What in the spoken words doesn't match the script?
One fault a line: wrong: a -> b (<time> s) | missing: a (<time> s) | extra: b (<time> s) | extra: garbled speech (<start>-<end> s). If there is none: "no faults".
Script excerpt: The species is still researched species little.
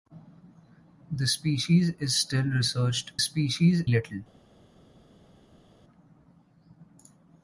no faults